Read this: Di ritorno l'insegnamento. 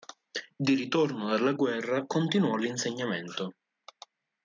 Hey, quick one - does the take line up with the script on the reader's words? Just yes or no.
no